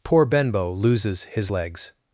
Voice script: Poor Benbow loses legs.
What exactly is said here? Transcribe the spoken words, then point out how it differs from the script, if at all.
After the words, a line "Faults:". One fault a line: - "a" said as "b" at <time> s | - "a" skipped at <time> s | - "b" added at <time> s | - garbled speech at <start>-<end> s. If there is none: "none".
Poor Benbow loses his legs.
Faults:
- "his" added at 1.2 s